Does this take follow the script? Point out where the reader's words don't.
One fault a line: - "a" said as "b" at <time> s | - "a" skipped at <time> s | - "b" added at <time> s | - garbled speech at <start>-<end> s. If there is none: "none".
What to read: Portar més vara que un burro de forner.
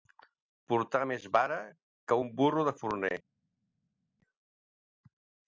none